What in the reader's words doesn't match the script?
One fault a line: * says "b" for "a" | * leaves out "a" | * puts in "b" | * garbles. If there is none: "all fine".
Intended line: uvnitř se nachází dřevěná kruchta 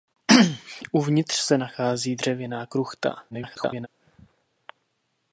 * garbles